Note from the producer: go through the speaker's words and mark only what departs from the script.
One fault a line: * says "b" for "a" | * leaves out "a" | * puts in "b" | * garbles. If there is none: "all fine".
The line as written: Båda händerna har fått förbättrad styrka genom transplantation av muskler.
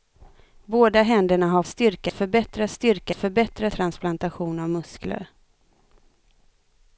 * says "styrka" for "fått"
* says "förbättrad" for "genom"